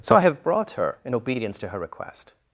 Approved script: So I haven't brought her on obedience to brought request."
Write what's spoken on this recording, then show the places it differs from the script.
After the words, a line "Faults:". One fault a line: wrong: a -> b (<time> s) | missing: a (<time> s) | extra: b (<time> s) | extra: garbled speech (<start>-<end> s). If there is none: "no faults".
So I have brought her in obedience to her request."
Faults:
wrong: haven't -> have (0.2 s)
wrong: on -> in (1.0 s)
wrong: brought -> her (1.7 s)